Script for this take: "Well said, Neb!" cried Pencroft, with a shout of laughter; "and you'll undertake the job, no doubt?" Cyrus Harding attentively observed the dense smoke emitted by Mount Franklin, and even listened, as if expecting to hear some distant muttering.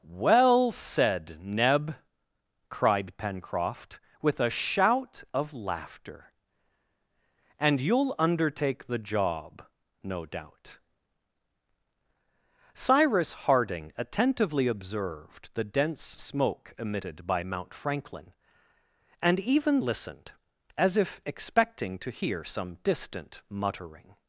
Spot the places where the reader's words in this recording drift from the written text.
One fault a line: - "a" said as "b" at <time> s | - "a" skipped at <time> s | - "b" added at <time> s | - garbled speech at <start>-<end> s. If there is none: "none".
none